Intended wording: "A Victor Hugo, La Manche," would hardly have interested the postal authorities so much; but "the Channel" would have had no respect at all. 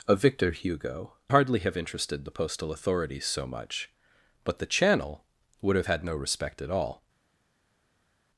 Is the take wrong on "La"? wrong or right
wrong